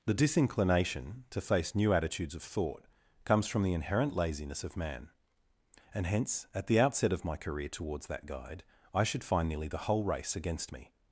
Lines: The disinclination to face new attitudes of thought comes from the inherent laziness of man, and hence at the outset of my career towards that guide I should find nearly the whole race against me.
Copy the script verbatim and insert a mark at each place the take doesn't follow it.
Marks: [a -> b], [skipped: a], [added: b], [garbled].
The disinclination to face new attitudes of thought comes from the inherent laziness of man, and hence at the outset of my career towards that guide I should find nearly the whole race against me.